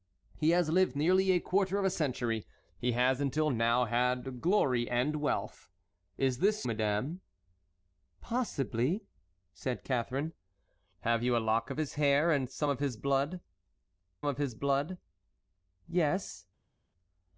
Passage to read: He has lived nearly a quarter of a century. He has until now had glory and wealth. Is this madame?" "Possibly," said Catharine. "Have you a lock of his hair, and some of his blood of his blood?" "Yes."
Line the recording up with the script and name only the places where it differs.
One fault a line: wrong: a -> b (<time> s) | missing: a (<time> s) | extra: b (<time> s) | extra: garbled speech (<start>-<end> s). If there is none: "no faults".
no faults